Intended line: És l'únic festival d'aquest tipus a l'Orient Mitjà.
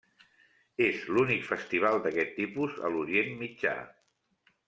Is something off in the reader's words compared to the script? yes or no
no